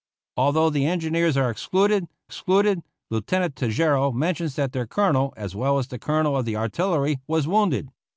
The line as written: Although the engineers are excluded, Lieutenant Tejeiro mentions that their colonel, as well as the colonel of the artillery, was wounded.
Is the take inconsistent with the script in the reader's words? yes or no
yes